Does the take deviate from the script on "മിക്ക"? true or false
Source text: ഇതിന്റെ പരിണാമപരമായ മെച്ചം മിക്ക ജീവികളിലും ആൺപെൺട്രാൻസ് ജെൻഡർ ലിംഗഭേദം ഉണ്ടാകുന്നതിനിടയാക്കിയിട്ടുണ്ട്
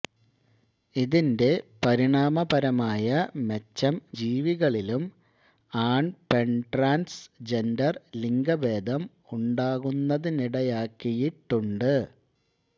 true